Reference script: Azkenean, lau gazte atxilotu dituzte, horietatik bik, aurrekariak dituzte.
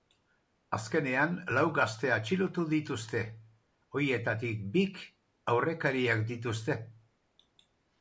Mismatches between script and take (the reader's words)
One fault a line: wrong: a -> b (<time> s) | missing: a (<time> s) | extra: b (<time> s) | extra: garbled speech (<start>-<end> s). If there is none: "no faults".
no faults